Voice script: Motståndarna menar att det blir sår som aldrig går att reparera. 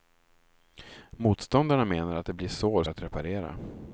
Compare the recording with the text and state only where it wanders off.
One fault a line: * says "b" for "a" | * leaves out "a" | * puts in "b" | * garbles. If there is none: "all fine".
* leaves out "som aldrig går"